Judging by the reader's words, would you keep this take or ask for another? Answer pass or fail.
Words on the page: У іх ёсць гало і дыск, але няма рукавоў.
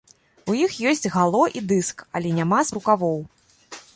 pass